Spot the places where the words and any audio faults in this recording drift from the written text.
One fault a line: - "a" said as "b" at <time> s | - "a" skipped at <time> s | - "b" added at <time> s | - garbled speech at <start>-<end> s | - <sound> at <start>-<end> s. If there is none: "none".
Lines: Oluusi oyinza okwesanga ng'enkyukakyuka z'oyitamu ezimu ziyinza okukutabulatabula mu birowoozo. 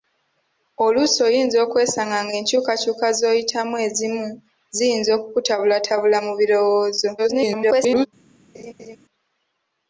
- garbled speech at 7.2-8.1 s
- laugh at 8.5-9.0 s